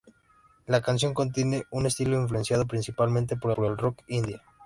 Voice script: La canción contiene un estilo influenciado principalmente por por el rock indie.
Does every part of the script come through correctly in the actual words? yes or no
yes